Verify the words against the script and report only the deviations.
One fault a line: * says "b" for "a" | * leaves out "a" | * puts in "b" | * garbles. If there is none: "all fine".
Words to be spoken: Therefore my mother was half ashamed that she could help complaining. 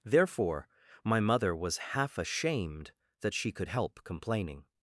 all fine